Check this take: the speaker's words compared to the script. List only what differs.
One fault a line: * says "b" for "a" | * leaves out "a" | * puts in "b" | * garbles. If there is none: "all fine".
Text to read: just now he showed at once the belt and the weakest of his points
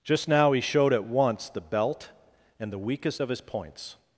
all fine